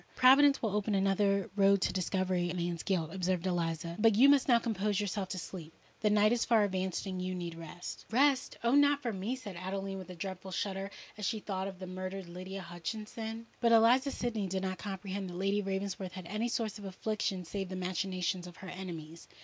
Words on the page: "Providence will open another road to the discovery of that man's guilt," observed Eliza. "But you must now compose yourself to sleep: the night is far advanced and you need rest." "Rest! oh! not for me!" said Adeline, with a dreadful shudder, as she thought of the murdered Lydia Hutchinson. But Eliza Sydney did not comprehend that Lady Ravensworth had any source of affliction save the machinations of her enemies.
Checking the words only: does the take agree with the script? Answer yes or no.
no